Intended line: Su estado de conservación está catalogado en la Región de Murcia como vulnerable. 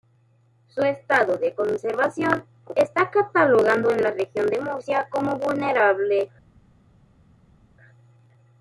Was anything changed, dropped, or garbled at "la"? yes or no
no